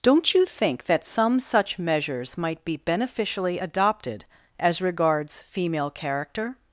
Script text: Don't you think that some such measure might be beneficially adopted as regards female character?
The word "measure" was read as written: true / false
false